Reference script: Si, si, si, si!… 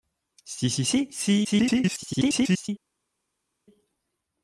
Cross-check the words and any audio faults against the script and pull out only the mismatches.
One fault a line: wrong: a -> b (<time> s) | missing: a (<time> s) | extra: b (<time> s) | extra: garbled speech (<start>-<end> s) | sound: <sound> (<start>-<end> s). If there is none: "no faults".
extra: garbled speech (1.4-2.7 s)